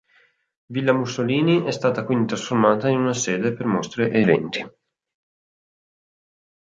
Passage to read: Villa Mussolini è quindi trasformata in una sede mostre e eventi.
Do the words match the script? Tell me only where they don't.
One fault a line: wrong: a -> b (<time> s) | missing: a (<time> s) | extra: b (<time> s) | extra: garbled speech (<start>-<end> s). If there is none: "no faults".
extra: stata (1.7 s)
extra: per (3.5 s)